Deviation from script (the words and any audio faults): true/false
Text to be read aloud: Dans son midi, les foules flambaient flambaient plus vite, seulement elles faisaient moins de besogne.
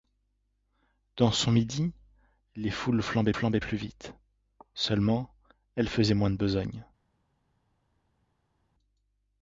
false